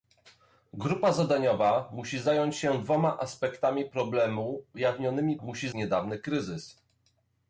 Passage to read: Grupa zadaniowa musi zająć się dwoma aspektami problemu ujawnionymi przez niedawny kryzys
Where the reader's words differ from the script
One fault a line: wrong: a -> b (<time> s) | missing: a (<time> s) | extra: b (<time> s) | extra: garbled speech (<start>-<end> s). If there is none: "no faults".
wrong: przez -> musi (5.4 s)